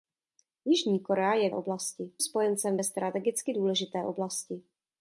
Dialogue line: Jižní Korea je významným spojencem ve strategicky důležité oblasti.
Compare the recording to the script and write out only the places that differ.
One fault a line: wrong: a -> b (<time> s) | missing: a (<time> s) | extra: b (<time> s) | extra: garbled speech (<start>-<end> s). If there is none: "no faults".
wrong: významným -> oblasti (1.5 s)